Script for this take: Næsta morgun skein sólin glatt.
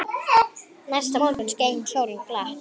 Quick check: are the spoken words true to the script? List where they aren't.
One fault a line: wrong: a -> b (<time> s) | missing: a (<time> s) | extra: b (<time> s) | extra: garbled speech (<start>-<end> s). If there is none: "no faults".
no faults